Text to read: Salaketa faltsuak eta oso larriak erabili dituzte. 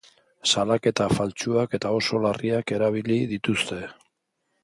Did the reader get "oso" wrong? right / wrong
right